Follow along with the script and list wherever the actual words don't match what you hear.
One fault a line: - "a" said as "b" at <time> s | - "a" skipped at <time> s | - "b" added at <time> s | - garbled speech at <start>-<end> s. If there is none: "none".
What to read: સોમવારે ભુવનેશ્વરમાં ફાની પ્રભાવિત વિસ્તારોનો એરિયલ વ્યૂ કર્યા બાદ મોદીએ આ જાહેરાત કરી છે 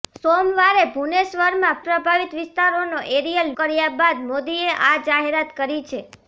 - "ફાની" skipped at 1.8 s
- "વ્યૂ" skipped at 3.5 s